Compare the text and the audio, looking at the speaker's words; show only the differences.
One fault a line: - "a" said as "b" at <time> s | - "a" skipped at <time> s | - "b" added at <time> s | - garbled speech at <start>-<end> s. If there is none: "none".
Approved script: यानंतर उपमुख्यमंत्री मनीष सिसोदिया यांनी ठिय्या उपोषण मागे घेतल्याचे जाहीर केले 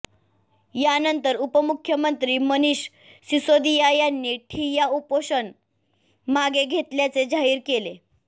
none